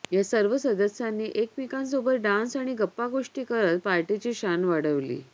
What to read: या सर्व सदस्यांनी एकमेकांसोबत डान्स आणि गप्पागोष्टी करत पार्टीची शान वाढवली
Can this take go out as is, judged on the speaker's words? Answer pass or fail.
pass